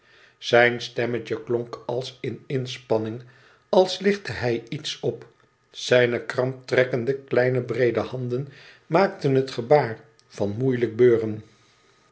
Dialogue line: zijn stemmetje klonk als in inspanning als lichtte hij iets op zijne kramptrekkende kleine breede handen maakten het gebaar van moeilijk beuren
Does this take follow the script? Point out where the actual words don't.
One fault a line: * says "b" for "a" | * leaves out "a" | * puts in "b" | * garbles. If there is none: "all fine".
all fine